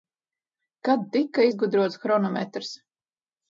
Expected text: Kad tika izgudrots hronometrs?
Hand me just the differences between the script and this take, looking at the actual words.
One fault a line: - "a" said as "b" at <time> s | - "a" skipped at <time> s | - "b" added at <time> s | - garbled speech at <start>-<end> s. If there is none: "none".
none